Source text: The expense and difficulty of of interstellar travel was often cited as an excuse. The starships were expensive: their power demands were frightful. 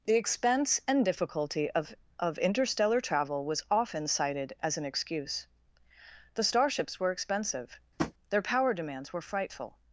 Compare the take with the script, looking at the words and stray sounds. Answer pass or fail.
fail